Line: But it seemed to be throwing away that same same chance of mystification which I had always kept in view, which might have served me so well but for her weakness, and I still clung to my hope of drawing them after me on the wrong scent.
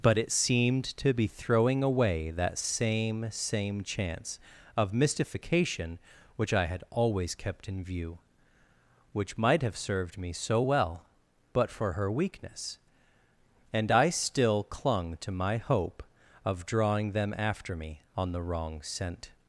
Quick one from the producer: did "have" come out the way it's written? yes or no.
yes